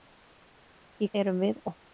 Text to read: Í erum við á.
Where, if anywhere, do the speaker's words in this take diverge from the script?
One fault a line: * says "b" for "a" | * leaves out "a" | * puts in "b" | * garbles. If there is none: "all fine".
all fine